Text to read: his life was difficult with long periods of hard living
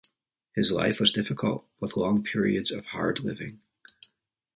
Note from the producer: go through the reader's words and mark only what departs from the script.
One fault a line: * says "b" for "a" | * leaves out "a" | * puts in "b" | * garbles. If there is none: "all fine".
all fine